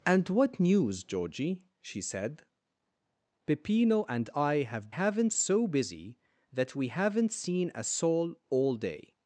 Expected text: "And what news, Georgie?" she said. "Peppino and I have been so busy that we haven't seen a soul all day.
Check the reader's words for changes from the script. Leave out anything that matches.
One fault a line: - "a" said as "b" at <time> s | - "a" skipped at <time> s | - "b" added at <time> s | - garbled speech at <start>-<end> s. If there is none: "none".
- "been" said as "haven't" at 4.9 s